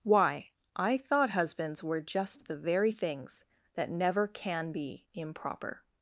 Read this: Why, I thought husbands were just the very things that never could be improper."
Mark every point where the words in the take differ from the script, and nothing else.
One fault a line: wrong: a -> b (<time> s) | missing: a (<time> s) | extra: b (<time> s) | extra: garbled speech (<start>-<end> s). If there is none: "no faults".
wrong: could -> can (4.3 s)